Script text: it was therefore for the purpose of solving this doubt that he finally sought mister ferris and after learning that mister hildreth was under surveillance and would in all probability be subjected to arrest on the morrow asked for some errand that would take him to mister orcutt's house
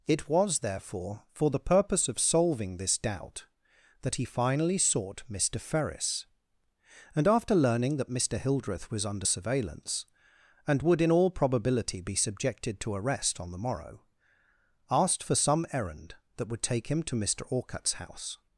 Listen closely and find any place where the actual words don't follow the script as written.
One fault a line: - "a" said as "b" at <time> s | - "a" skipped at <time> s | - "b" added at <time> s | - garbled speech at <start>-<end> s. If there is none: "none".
none